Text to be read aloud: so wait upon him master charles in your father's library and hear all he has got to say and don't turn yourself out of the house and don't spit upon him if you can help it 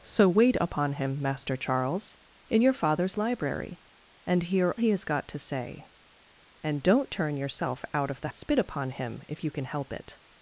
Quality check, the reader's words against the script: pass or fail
fail